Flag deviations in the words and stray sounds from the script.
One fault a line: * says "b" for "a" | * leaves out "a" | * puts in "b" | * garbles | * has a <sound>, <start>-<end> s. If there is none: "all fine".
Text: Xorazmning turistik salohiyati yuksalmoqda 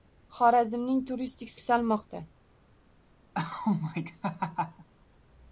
* leaves out "salohiyati"
* has a laugh, 3.3-4.9 s